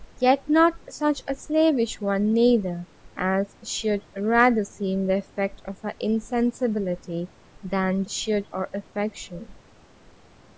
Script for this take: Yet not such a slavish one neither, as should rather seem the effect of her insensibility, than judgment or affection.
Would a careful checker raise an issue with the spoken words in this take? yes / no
yes